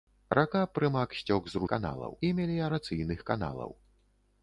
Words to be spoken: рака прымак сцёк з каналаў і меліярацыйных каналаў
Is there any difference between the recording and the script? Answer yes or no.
no